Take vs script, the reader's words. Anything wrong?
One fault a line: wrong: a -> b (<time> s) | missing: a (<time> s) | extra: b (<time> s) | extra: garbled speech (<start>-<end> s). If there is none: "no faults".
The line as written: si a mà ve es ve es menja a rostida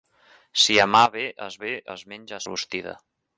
no faults